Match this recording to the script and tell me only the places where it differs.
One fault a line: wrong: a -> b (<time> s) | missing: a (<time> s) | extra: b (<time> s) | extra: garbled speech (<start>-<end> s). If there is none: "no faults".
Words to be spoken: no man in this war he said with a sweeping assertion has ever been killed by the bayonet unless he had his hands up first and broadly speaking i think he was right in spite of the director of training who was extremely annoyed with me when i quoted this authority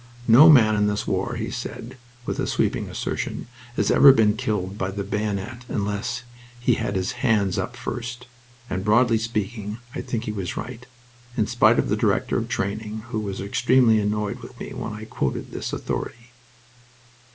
no faults